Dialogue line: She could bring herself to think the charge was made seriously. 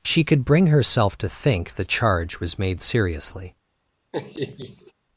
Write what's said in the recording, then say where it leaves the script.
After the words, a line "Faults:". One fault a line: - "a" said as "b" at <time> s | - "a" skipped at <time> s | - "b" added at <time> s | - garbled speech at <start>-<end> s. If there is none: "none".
She could bring herself to think the charge was made seriously.
Faults:
none